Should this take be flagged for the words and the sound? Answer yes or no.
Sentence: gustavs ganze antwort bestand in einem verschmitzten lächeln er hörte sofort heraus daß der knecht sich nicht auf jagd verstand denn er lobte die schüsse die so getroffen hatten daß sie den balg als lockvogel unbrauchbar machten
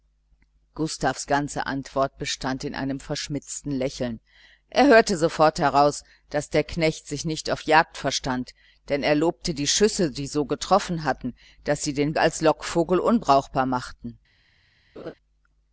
yes